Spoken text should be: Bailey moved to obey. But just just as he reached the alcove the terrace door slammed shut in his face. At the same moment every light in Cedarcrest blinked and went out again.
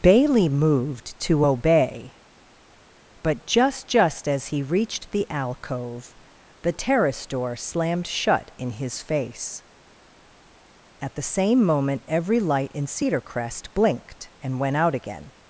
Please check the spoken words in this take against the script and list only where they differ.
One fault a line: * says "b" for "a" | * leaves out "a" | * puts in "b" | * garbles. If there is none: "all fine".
all fine